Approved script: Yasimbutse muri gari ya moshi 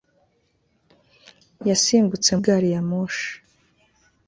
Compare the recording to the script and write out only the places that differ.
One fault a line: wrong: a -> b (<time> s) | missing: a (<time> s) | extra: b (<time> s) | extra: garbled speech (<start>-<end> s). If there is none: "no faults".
missing: muri (2.3 s)